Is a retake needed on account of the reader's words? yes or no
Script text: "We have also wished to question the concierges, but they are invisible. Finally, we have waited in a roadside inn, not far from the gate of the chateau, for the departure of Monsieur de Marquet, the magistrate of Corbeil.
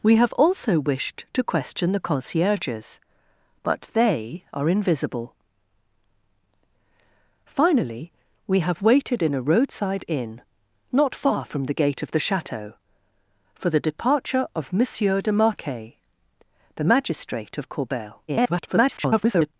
yes